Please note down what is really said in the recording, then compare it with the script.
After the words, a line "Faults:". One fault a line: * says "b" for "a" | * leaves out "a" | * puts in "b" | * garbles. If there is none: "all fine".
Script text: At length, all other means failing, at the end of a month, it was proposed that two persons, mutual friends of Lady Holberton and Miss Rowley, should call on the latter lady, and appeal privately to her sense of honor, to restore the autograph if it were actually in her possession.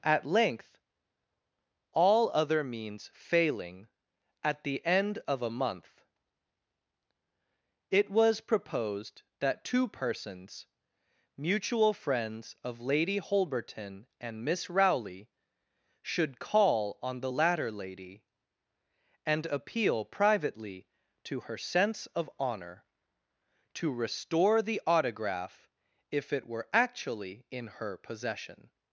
At length, all other means failing, at the end of a month, it was proposed that two persons, mutual friends of Lady Holberton and Miss Rowley, should call on the latter lady, and appeal privately to her sense of honor, to restore the autograph if it were actually in her possession.
Faults:
all fine